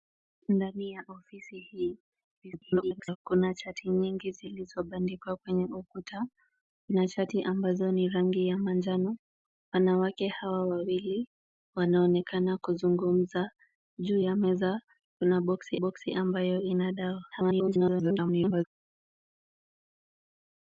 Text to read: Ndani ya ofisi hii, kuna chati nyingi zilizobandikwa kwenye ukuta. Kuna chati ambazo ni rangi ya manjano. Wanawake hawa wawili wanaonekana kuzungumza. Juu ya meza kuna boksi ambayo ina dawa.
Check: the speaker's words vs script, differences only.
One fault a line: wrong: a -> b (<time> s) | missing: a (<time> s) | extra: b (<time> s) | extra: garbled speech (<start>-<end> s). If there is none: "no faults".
extra: garbled speech (2.4-3.2 s)
extra: boksi (15.7 s)
extra: garbled speech (17.3-18.6 s)